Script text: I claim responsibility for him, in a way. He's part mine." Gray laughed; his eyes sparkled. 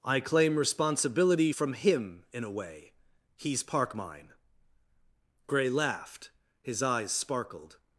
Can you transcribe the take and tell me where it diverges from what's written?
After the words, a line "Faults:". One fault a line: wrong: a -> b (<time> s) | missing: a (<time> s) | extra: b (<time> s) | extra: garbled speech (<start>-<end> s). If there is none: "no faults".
I claim responsibility from him, in a way. He's park mine." Gray laughed; his eyes sparkled.
Faults:
wrong: for -> from (1.5 s)
wrong: part -> park (3.6 s)